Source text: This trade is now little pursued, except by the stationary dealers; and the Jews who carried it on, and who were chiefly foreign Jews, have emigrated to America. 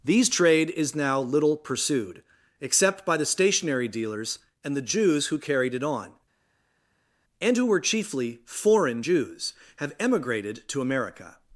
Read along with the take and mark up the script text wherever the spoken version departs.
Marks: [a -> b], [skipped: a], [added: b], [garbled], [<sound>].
[This -> These] trade is now little pursued, except by the stationary dealers; and the Jews who carried it on, and who were chiefly foreign Jews, have emigrated to America.